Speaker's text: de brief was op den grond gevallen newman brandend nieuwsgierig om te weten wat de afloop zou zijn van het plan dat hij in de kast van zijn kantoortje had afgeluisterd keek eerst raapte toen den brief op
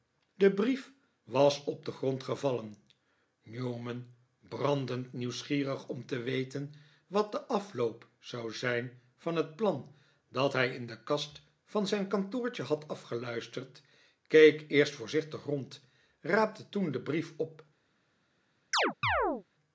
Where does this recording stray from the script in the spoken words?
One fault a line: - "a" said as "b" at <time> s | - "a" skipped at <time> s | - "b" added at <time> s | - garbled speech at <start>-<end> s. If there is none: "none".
- "voorzichtig rond" added at 14.9 s